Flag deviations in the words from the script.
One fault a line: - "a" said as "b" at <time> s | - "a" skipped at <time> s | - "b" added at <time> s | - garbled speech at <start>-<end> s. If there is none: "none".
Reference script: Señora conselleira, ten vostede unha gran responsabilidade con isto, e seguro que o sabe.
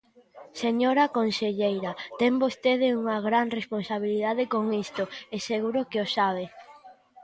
none